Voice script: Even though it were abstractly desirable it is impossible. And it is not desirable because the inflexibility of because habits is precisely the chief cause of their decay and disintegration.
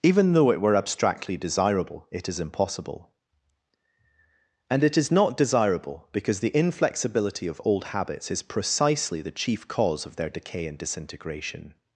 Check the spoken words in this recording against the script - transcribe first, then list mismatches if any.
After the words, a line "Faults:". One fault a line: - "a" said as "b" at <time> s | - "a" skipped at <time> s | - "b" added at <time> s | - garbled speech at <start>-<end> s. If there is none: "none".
Even though it were abstractly desirable it is impossible. And it is not desirable because the inflexibility of old habits is precisely the chief cause of their decay and disintegration.
Faults:
- "because" said as "old" at 7.7 s